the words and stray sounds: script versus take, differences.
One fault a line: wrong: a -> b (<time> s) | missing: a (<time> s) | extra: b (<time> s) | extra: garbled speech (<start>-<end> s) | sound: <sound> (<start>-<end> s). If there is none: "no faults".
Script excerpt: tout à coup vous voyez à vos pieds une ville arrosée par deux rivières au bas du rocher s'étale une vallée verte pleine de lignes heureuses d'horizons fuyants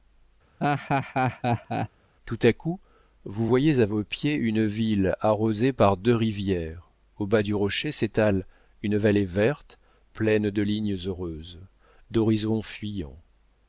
sound: laugh (0.6-1.9 s)